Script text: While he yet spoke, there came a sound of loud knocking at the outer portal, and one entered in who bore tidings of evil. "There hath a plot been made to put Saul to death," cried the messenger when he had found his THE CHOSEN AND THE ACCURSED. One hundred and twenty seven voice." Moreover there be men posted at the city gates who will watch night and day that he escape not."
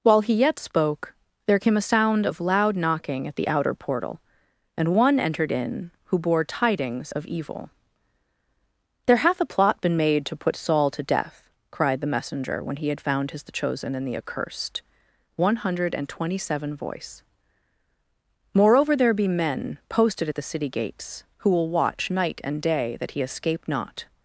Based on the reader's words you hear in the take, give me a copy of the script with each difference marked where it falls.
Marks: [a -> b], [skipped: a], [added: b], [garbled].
While he yet spoke, there came a sound of loud knocking at the outer portal, and one entered in who bore tidings of evil. "There hath a plot been made to put Saul to death," cried the messenger when he had found his THE CHOSEN AND THE ACCURSED. One hundred and twenty seven voice." Moreover there be men posted at the city gates who will watch night and day that he escape not."